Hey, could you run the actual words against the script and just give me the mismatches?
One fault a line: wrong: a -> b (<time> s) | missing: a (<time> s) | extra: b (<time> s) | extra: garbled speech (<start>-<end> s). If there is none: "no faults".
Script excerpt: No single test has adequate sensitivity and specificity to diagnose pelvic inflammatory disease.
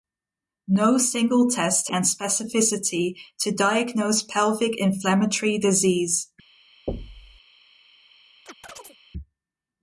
missing: has adequate sensitivity (1.9 s)